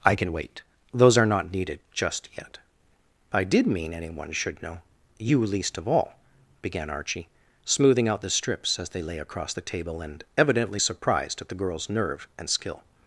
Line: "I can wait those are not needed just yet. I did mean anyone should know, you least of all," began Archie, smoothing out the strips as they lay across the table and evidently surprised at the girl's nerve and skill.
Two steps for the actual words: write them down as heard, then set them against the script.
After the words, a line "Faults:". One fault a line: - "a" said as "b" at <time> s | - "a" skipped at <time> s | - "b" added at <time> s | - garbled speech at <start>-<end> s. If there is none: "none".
"I can wait those are not needed just yet. I did mean anyone should know, you least of all," began Archie, smoothing out the strips as they lay across the table and evidently surprised at the girl's nerve and skill.
Faults:
none